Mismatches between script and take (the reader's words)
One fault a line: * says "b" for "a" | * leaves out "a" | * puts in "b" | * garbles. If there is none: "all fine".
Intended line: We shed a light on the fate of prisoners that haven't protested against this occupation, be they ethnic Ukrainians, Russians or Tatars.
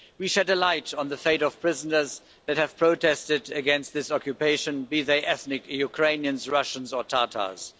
* says "have" for "haven't"